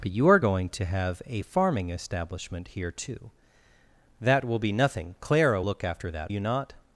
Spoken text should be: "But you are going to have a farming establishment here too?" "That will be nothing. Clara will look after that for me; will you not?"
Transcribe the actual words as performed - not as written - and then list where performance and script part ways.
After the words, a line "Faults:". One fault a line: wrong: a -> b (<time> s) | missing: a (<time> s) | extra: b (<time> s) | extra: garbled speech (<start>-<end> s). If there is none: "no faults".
"But you are going to have a farming establishment here too?" "That will be nothing. Clara look after that you not?"
Faults:
missing: will (5.6 s)
missing: for me will (6.3 s)